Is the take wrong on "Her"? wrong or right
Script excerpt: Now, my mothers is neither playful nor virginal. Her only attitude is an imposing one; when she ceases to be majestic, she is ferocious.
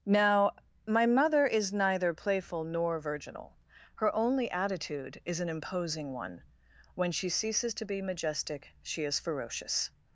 right